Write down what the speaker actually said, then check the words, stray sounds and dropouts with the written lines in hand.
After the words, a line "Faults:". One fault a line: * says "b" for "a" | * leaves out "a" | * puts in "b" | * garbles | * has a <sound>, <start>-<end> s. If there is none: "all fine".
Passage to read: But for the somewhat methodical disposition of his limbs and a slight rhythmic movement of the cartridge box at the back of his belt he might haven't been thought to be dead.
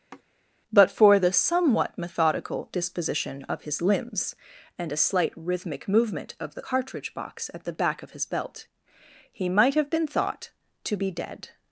But for the somewhat methodical disposition of his limbs and a slight rhythmic movement of the cartridge box at the back of his belt he might have been thought to be dead.
Faults:
* has a sigh, 0.1-0.2 s
* says "have" for "haven't"